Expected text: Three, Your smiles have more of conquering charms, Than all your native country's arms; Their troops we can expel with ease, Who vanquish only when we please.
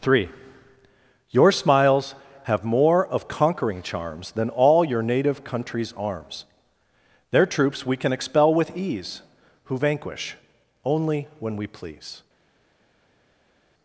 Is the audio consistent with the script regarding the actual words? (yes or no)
yes